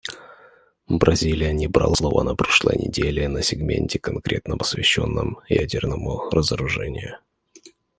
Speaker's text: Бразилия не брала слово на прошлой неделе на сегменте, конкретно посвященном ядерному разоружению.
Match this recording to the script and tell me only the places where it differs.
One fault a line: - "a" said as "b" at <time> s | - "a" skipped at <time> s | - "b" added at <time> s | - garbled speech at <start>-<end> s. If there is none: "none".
none